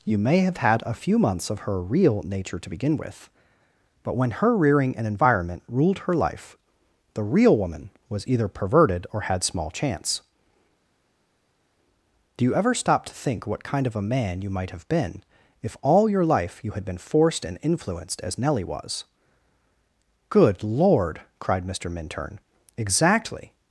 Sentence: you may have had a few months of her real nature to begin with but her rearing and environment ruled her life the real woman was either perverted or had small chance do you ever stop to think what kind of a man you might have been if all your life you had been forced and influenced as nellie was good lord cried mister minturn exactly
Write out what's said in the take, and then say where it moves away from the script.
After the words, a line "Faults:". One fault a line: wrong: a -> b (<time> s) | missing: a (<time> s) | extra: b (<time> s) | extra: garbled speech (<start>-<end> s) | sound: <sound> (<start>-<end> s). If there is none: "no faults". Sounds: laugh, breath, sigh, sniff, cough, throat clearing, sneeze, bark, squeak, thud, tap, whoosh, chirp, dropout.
you may have had a few months of her real nature to begin with but when her rearing and environment ruled her life the real woman was either perverted or had small chance do you ever stop to think what kind of a man you might have been if all your life you had been forced and influenced as nellie was good lord cried mister minturn exactly
Faults:
extra: when (4.2 s)